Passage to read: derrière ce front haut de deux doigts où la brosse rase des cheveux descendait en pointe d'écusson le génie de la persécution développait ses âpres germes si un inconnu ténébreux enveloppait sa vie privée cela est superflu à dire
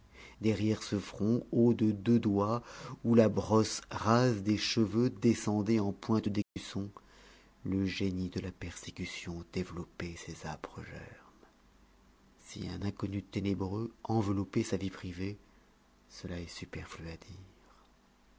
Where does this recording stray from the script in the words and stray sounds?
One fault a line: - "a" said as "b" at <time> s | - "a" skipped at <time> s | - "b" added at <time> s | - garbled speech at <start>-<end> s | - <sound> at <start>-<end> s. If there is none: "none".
- dropout at 6.4-6.6 s